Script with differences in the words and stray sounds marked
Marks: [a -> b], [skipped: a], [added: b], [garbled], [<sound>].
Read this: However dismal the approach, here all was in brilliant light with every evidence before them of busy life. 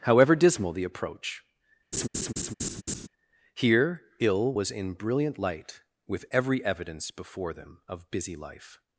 However dismal the approach, [laugh] here [all -> ill] was in brilliant light with every evidence before them of busy life.